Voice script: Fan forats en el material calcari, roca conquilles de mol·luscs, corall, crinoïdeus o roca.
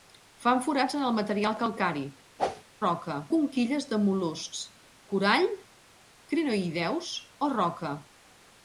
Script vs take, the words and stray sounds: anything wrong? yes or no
yes